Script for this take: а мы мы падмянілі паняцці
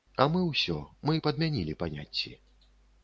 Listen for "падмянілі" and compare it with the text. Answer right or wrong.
right